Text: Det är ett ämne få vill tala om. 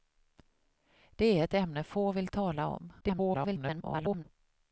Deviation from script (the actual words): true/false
true